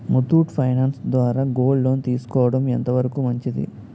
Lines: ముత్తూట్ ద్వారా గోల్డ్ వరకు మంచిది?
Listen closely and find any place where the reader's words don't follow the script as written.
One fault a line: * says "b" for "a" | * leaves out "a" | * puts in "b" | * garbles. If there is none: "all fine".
* puts in "ఫైనాన్స్"
* puts in "లోన్ తీసుకోవడం ఎంత"